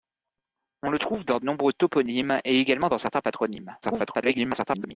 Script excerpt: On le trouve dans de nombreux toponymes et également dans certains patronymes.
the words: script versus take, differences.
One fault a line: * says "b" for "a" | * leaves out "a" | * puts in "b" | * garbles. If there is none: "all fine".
* leaves out "de"
* garbles